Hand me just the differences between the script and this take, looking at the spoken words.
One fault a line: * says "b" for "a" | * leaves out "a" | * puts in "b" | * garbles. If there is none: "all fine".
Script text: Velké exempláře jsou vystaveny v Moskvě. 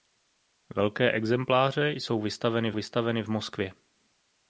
* puts in "vystaveny"